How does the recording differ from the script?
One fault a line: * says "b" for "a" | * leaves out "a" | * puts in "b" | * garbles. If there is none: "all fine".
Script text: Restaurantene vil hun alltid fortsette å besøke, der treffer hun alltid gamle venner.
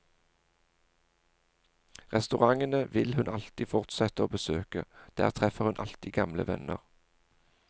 all fine